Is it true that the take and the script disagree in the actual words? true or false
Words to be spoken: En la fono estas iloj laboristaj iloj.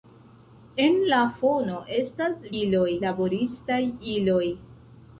false